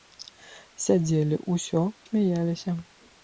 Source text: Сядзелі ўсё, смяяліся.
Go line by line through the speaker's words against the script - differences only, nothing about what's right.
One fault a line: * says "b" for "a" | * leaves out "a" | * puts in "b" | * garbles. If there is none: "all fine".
all fine